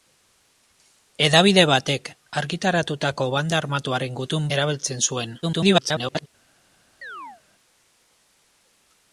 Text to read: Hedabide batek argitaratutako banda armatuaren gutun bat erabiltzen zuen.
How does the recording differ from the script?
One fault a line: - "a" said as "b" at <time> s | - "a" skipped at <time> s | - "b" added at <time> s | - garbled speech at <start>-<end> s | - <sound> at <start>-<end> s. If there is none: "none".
- "bat" skipped at 4.5 s
- garbled speech at 5.4-6.3 s
- chirp at 7.0-7.4 s